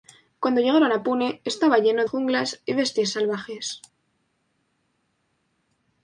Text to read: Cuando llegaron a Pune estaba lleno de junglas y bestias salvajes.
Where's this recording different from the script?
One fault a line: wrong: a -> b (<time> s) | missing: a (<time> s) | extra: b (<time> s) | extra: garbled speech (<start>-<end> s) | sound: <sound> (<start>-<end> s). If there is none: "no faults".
missing: de (2.0 s)